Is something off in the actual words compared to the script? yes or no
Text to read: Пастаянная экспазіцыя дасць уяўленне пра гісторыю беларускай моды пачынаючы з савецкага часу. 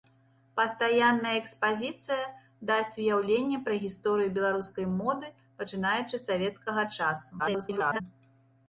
yes